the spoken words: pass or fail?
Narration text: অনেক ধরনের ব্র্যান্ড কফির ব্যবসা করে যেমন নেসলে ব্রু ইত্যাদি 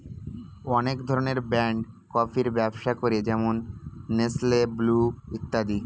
pass